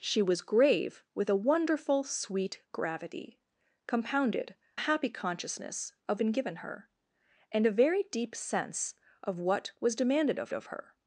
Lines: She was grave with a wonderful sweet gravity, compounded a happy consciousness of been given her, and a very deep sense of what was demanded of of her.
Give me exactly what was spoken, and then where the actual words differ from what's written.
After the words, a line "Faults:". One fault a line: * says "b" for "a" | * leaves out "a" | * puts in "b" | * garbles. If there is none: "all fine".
She was grave with a wonderful sweet gravity, compounded a happy consciousness of been given her, and a very deep sense of what was demanded of of her.
Faults:
all fine